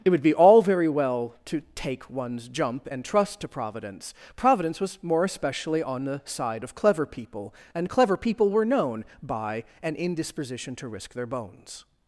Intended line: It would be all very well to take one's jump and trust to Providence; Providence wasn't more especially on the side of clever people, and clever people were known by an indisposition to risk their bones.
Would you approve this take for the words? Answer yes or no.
no